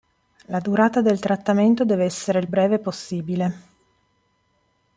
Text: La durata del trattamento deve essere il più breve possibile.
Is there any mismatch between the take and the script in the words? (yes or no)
yes